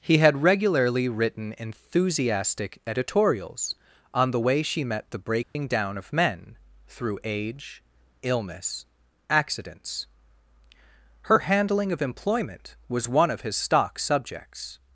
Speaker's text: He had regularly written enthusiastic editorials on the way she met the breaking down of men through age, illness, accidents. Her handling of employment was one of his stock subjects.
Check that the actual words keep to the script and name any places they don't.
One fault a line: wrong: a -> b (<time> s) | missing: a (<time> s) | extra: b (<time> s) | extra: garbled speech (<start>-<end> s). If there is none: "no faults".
no faults